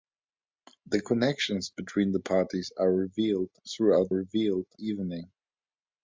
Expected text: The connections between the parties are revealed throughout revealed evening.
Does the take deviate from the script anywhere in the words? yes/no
no